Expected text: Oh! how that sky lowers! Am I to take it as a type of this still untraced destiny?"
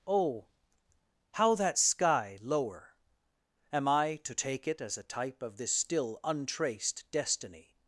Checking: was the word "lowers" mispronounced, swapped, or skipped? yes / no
yes